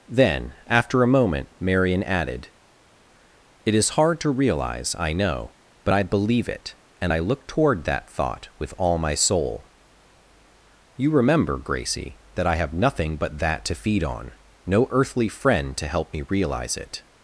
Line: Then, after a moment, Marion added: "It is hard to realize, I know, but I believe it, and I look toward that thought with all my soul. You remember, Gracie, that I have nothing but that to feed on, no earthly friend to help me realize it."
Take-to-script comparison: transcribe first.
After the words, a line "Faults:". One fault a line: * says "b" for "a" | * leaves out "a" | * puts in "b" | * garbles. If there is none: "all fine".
Then, after a moment, Marion added: "It is hard to realize, I know, but I believe it, and I look toward that thought with all my soul. You remember, Gracie, that I have nothing but that to feed on, no earthly friend to help me realize it."
Faults:
all fine